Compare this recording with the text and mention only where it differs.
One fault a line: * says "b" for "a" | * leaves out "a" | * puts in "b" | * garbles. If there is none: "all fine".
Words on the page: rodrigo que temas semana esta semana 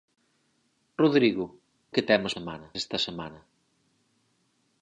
all fine